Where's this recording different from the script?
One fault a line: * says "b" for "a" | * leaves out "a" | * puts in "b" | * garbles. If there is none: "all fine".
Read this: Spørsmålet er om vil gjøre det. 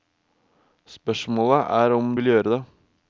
all fine